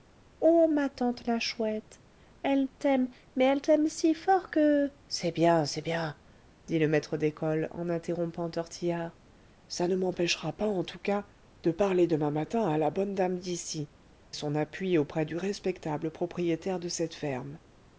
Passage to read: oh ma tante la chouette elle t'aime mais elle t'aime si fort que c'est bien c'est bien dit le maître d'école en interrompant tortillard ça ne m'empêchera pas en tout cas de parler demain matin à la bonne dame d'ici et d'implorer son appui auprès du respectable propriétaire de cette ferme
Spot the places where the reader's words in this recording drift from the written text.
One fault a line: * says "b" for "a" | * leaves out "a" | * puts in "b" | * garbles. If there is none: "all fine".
* leaves out "et d'implorer"